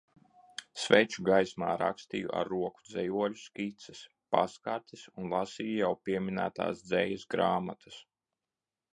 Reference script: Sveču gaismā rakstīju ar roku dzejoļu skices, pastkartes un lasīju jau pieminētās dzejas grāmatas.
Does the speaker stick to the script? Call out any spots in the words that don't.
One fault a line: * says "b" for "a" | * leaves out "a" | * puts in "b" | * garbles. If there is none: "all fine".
all fine